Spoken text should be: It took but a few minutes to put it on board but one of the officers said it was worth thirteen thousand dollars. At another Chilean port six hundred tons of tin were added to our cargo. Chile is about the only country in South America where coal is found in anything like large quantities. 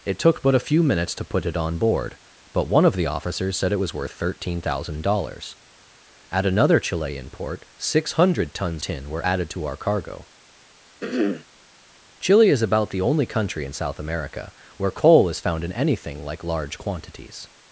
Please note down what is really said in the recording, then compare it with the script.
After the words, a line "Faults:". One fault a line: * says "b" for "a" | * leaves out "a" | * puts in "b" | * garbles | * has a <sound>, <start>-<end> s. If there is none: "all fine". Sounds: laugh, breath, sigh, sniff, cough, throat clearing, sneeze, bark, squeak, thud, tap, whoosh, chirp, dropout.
It took but a few minutes to put it on board but one of the officers said it was worth thirteen thousand dollars. At another Chilean port six hundred tons tin were added to our cargo. Chile is about the only country in South America where coal is found in anything like large quantities.
Faults:
* leaves out "of"
* has a throat clearing, 11.0-11.5 s